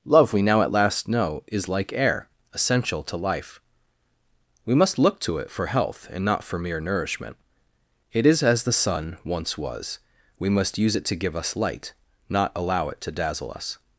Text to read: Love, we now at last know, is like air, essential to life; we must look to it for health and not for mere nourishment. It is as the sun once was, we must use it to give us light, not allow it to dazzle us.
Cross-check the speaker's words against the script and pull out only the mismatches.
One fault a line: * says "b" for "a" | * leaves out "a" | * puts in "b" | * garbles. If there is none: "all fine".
all fine